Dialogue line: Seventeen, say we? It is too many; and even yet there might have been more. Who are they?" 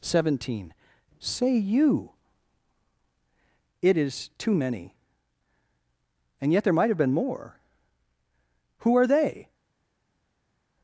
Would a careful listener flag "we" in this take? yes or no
yes